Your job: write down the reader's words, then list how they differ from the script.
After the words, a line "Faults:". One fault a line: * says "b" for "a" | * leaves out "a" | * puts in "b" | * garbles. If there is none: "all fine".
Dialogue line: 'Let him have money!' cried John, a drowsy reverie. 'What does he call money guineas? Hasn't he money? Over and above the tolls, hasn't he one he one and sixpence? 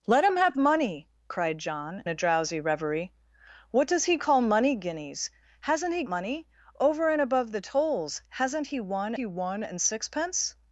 'Let him have money!' cried John, a drowsy reverie. 'What does he call money guineas? Hasn't he money? Over and above the tolls, hasn't he one he one and sixpence?
Faults:
all fine